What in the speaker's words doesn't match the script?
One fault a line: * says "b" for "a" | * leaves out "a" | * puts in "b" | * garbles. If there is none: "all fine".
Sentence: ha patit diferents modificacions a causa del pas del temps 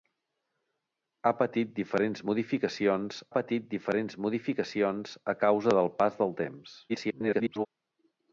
* puts in "patit diferents modificacions"
* garbles